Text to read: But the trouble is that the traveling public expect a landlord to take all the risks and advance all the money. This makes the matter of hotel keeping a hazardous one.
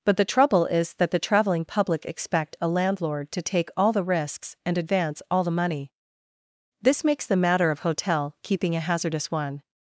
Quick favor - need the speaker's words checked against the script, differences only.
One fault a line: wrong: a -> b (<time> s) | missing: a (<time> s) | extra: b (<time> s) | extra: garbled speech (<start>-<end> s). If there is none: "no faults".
no faults